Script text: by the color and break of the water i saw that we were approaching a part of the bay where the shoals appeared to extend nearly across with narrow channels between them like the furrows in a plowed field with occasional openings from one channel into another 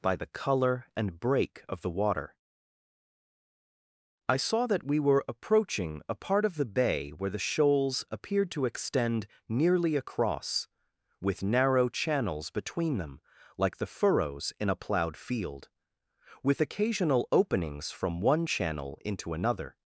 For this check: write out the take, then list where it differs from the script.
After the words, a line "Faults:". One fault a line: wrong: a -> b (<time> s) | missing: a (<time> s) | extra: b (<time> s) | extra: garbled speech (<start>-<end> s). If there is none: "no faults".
by the color and break of the water i saw that we were approaching a part of the bay where the shoals appeared to extend nearly across with narrow channels between them like the furrows in a plowed field with occasional openings from one channel into another
Faults:
no faults